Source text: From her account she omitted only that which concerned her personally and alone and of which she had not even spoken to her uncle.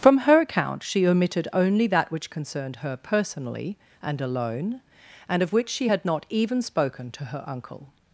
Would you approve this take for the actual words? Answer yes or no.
yes